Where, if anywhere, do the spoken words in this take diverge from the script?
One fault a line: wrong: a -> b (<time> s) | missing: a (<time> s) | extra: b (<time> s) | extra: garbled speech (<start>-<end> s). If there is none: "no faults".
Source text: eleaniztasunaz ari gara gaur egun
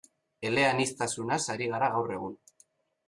no faults